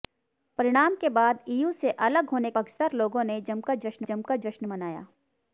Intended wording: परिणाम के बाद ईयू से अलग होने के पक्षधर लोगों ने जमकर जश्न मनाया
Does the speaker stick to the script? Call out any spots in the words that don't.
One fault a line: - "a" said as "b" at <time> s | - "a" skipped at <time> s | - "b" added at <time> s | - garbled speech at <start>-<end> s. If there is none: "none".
- "के" skipped at 2.5 s
- "जमकर जश्न" added at 4.0 s